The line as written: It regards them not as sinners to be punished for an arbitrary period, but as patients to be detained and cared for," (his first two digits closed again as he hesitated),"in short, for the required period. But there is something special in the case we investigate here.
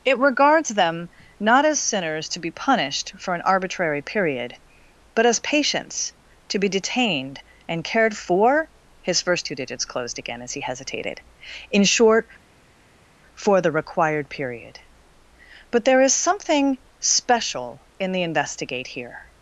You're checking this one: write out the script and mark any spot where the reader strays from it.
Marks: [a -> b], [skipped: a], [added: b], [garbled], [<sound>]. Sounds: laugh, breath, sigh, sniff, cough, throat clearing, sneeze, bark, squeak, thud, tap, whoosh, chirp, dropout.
It regards them not as sinners to be punished for an arbitrary period, but as patients to be detained and cared for," (his first two digits closed again as he hesitated),"in short, for the required period. But there is something special in the [skipped: case we] investigate here.